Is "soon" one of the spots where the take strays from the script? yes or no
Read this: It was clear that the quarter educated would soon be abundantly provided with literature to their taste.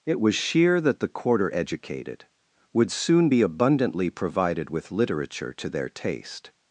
no